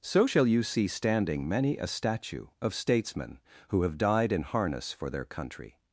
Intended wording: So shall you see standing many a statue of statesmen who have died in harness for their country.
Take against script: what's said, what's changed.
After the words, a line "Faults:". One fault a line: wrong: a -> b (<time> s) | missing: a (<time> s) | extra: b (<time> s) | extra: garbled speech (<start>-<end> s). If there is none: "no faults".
So shall you see standing many a statue of statesmen who have died in harness for their country.
Faults:
no faults